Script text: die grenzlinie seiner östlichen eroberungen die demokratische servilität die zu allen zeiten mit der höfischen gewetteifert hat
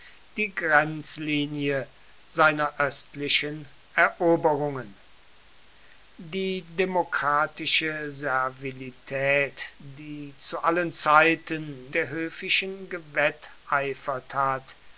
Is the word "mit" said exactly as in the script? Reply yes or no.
no